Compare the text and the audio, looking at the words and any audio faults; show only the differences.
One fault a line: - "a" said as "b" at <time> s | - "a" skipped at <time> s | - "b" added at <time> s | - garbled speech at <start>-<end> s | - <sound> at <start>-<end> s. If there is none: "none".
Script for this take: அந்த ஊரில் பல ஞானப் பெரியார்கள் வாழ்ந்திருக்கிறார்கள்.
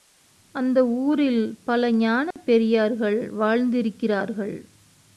- dropout at 2.3-2.4 s